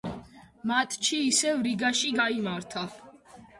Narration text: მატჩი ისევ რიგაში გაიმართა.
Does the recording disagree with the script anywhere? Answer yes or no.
no